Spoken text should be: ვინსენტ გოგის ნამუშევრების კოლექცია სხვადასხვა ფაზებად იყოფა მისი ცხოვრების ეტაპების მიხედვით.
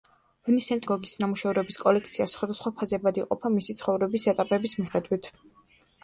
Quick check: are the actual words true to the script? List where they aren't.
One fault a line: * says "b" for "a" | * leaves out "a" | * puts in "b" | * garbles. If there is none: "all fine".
all fine